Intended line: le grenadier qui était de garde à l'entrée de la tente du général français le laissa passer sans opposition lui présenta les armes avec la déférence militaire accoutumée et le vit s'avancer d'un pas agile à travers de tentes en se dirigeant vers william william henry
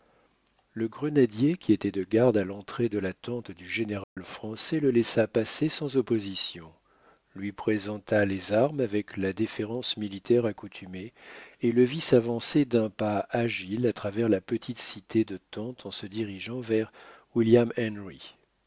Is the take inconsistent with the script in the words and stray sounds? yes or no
yes